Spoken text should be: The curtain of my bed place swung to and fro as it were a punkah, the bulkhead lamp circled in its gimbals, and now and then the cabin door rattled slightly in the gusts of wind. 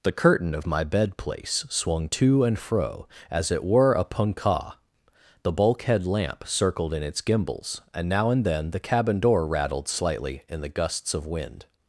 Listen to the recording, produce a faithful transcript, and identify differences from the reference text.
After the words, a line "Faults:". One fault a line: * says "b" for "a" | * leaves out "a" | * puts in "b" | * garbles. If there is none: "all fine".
The curtain of my bed place swung to and fro as it were a punkah, the bulkhead lamp circled in its gimbals, and now and then the cabin door rattled slightly in the gusts of wind.
Faults:
all fine